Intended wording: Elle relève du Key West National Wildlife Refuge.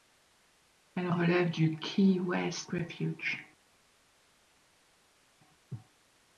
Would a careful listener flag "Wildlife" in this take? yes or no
yes